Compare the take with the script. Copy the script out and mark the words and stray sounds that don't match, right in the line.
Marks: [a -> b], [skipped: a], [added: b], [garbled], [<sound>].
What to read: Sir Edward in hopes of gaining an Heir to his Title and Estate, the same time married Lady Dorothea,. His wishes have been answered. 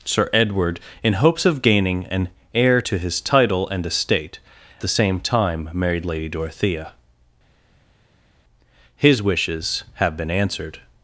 Sir Edward in hopes of gaining an Heir to his Title and Estate, the same time married Lady Dorothea,. His wishes have been answered.